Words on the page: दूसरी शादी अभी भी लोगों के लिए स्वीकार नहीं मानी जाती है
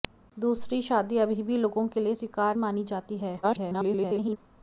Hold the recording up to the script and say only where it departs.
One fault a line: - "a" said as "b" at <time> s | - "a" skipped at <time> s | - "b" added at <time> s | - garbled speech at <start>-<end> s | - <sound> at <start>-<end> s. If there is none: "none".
- "नहीं" skipped at 2.6 s
- garbled speech at 3.4-4.4 s